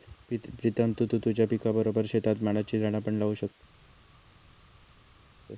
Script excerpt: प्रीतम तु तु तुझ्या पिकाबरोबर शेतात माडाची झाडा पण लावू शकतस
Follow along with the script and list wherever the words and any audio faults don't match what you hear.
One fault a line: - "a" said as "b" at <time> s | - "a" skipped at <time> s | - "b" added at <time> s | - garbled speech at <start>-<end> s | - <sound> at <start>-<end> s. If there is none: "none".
none